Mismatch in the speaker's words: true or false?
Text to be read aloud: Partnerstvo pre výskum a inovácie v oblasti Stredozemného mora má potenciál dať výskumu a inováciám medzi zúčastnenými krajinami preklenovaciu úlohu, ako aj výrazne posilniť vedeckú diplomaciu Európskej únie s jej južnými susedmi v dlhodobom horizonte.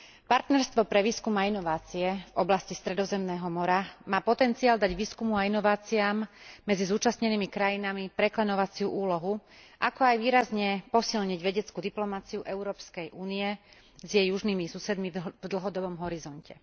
false